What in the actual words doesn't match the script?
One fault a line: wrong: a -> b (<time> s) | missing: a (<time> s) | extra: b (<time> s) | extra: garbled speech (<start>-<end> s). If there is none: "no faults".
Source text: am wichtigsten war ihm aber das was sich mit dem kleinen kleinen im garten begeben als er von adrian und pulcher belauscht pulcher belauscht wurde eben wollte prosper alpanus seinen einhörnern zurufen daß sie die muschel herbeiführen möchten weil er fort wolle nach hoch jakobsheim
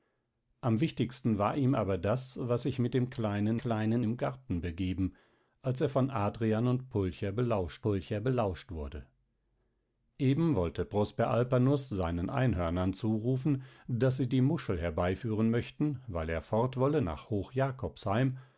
no faults